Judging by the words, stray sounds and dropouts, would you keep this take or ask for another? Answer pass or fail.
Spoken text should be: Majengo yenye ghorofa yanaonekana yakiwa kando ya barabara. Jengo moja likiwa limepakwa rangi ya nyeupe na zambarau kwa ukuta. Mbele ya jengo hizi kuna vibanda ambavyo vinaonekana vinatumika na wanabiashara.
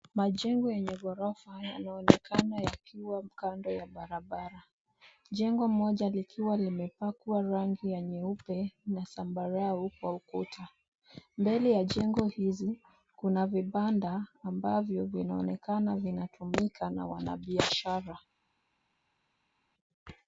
pass